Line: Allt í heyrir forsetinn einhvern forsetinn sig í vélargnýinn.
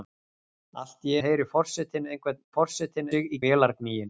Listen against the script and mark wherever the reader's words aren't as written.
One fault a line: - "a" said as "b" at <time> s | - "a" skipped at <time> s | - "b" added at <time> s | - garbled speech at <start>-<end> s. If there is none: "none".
none